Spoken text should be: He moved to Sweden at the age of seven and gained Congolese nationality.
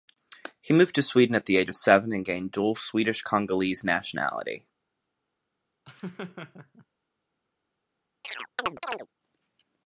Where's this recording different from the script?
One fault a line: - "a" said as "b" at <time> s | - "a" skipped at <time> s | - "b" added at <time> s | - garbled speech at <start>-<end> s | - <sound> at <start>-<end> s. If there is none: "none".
- "dual Swedish" added at 2.5 s
- laugh at 5.8-6.9 s
- chirp at 8.2-9.1 s